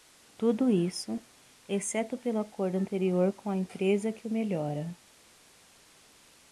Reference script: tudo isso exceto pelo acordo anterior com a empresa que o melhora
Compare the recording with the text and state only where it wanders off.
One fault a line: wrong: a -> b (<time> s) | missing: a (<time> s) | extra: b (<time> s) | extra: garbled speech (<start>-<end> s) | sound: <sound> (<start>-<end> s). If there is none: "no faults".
no faults